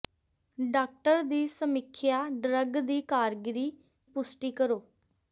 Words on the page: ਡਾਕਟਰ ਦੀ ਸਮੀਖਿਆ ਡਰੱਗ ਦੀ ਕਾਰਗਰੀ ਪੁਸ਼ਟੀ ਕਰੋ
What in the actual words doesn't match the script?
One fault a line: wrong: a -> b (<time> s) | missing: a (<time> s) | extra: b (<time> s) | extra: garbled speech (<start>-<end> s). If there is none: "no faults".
no faults